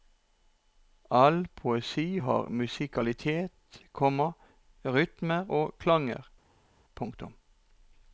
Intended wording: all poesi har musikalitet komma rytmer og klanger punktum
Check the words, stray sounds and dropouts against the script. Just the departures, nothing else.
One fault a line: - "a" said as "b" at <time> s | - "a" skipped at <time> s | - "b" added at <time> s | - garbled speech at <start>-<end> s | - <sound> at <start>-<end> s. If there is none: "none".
none